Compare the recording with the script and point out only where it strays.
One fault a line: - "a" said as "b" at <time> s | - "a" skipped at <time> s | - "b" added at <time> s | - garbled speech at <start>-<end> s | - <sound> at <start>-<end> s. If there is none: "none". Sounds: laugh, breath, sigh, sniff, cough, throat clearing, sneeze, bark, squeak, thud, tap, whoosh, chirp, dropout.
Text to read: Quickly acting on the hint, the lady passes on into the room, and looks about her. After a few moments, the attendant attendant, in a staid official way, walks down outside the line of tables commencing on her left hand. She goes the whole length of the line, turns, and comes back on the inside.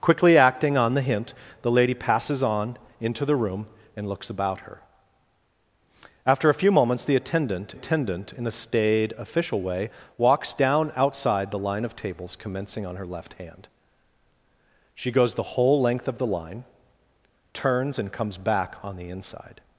none